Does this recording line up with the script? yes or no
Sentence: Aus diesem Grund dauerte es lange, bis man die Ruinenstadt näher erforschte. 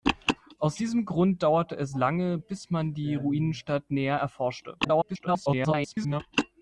no